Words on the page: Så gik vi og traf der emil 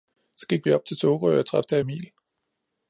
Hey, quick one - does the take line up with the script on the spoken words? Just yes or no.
no